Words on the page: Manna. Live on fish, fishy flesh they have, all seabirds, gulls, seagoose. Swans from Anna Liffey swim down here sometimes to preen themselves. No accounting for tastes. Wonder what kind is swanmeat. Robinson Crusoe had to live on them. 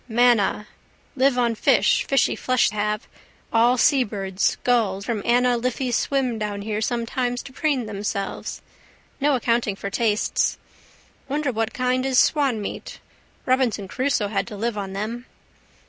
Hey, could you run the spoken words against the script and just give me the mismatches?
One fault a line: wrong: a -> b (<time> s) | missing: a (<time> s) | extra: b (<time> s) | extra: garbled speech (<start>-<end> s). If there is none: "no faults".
missing: they (2.7 s)
missing: seagoose Swans (5.0 s)